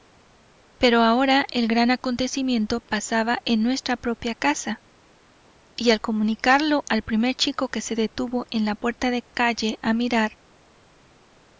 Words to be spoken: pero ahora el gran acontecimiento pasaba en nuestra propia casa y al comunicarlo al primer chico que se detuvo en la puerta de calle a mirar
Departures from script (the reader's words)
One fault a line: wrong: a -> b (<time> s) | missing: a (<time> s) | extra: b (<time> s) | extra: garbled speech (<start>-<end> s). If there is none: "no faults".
no faults